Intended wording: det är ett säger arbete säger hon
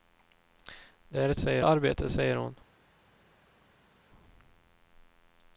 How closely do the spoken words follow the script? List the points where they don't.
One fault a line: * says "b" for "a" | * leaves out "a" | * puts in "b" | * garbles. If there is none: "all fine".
all fine